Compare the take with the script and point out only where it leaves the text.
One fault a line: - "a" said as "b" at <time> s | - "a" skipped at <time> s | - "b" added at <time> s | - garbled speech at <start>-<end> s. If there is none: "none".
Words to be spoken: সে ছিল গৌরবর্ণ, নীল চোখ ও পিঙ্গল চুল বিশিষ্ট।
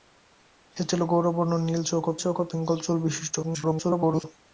- "চোখ ও" added at 2.2 s
- garbled speech at 3.4-4.2 s